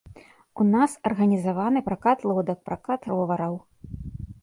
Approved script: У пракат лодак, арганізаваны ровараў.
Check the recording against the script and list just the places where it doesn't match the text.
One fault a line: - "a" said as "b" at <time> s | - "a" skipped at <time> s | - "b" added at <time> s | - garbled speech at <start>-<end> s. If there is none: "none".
- "нас арганізаваны" added at 0.8 s
- "арганізаваны" said as "пракат" at 2.7 s